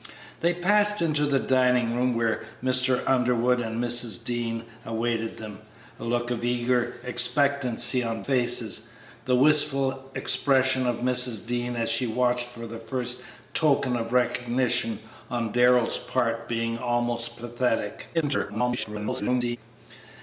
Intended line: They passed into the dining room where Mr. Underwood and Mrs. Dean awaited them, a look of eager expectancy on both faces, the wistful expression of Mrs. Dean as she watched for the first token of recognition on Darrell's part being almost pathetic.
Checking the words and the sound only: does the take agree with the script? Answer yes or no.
no